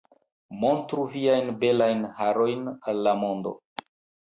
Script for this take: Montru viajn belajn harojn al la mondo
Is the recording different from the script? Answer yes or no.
no